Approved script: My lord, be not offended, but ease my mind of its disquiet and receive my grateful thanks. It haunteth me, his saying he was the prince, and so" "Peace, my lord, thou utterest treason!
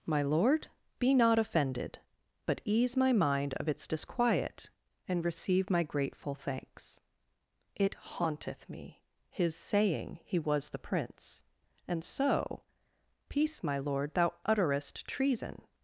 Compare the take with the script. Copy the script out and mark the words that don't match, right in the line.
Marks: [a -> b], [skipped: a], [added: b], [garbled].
My lord, be not offended, but ease my mind of its disquiet and receive my grateful thanks. It haunteth me, his saying he was the prince, and so" "Peace, my lord, thou utterest treason!